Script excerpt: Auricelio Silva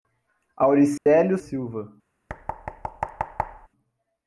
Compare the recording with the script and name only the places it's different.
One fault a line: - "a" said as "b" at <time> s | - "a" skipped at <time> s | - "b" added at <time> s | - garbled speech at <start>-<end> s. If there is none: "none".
none